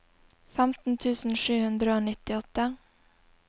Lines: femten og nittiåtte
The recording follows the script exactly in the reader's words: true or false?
false